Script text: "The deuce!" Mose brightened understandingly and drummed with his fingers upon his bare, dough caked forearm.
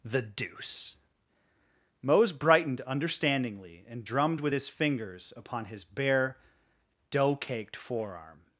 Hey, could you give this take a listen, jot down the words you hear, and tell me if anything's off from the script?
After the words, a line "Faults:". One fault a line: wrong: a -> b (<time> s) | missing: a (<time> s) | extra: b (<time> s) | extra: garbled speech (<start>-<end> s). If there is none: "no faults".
"The deuce!" Mose brightened understandingly and drummed with his fingers upon his bare, dough caked forearm.
Faults:
no faults